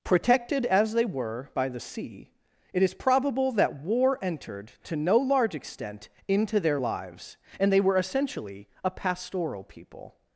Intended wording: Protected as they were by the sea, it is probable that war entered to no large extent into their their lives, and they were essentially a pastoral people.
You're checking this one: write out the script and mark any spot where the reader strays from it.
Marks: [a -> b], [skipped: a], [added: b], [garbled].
Protected as they were by the sea, it is probable that war entered to no large extent into their [skipped: their] lives, and they were essentially a pastoral people.